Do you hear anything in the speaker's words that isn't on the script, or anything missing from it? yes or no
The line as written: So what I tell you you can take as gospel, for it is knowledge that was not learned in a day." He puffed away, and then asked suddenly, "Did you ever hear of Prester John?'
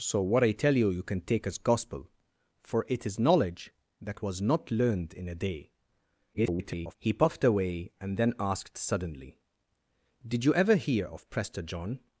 yes